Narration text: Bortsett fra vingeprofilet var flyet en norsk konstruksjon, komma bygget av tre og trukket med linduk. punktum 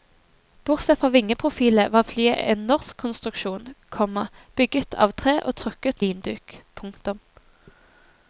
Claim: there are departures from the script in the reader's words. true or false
true